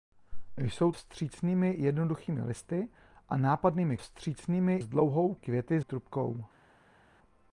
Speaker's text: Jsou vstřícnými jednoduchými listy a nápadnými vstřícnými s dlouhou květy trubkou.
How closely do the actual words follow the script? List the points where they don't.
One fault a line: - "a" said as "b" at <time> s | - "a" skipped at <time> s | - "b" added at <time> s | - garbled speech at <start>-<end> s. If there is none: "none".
none